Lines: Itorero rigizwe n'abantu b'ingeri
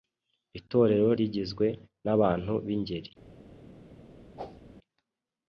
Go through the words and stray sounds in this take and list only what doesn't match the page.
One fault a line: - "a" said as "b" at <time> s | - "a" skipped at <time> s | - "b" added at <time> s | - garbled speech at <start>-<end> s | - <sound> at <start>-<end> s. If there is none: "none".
- whoosh at 4.4-4.6 s